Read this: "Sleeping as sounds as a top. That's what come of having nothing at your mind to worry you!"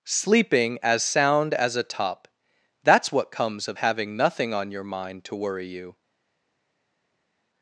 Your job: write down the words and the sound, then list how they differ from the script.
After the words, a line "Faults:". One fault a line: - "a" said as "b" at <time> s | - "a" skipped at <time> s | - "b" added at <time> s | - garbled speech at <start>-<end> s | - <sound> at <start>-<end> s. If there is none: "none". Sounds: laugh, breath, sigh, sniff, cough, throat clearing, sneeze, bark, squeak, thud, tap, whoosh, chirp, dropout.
"Sleeping as sound as a top. That's what comes of having nothing on your mind to worry you!"
Faults:
- "sounds" said as "sound" at 1.0 s
- "come" said as "comes" at 3.3 s
- "at" said as "on" at 4.5 s